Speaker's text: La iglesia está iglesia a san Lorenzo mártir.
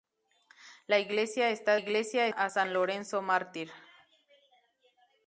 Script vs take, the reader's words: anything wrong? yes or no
no